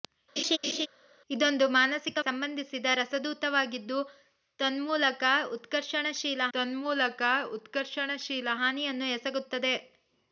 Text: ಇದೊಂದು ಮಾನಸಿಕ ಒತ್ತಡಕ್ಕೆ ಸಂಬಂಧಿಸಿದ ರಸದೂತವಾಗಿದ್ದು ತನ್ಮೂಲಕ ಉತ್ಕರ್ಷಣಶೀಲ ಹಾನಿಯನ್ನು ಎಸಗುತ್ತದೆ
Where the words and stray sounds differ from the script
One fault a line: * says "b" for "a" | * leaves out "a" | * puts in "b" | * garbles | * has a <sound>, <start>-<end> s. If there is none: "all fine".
* has a laugh, 0.4-0.9 s
* leaves out "ಒತ್ತಡಕ್ಕೆ"
* puts in "ತನ್ಮೂಲಕ ಉತ್ಕರ್ಷಣಶೀಲ"